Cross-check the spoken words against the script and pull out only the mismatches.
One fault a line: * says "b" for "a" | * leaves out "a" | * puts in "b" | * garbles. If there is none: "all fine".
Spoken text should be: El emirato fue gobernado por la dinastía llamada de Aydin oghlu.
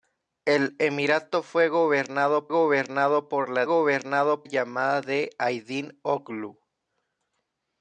* puts in "gobernado"
* says "gobernado" for "dinastía"